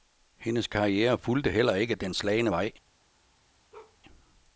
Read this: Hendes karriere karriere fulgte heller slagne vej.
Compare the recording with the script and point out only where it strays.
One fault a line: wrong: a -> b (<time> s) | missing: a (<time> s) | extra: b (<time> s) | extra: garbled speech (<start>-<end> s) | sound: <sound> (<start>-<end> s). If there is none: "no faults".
missing: karriere (1.2 s)
extra: ikke den (1.8 s)
sound: bark (3.7-4.0 s)